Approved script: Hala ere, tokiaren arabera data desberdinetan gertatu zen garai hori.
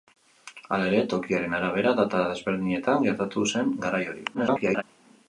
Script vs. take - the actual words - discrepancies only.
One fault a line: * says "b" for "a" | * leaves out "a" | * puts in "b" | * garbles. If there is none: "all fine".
* garbles